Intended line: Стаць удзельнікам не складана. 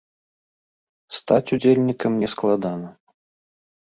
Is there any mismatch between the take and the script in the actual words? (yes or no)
no